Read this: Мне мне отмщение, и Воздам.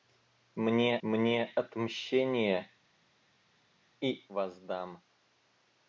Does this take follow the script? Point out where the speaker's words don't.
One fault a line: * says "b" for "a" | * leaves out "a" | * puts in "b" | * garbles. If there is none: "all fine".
all fine